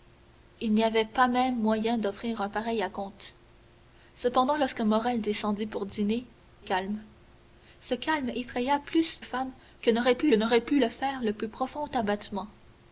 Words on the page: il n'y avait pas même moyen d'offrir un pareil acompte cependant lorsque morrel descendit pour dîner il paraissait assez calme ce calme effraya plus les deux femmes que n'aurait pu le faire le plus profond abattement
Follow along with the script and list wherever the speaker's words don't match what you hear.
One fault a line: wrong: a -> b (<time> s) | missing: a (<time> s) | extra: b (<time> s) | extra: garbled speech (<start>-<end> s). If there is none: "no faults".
missing: il paraissait assez (6.2 s)
wrong: les deux femmes que -> femmes que n'aurait pu (9.2 s)